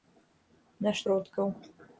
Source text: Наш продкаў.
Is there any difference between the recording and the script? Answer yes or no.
no